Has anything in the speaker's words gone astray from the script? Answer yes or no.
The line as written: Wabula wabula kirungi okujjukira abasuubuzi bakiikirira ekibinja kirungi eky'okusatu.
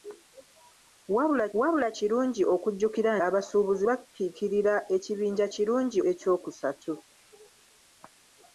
no